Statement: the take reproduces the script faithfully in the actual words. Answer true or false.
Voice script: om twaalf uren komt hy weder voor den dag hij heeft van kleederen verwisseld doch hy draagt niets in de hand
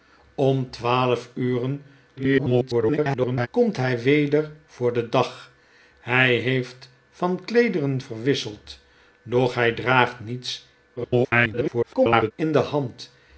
false